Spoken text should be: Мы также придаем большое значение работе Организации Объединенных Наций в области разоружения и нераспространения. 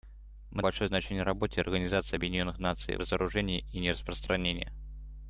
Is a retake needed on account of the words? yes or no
yes